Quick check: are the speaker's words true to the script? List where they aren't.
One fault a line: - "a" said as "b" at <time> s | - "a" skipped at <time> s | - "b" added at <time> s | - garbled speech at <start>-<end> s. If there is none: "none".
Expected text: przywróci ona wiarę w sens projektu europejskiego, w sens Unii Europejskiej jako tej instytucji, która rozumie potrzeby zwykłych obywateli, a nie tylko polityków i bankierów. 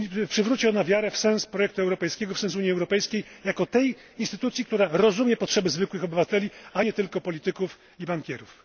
none